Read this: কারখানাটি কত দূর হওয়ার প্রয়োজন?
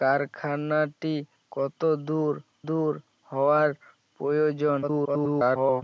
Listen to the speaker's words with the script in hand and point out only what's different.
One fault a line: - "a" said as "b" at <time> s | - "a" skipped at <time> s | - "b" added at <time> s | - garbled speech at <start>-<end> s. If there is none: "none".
- "দূর" added at 2.7 s
- garbled speech at 4.8-5.8 s